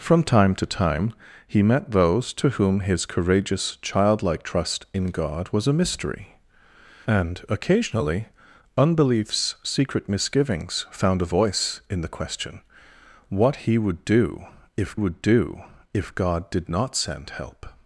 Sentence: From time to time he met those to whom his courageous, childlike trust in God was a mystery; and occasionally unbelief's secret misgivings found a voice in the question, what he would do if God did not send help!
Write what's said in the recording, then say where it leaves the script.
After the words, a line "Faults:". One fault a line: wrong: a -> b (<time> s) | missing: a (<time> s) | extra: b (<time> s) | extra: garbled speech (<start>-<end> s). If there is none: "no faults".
From time to time he met those to whom his courageous, childlike trust in God was a mystery; and occasionally unbelief's secret misgivings found a voice in the question, what he would do if would do if God did not send help!
Faults:
extra: would do if (14.9 s)